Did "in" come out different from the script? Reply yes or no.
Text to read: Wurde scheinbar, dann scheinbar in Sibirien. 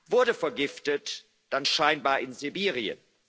no